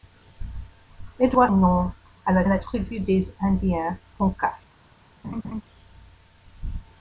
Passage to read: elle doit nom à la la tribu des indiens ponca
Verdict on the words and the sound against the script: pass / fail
fail